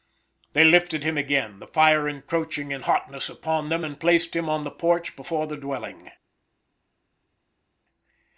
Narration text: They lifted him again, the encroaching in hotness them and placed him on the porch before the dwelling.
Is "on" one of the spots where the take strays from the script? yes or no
no